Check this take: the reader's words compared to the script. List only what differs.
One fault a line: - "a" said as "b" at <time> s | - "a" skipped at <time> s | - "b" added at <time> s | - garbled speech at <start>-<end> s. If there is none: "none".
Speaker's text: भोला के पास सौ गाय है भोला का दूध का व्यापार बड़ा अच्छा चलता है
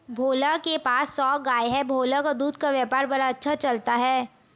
none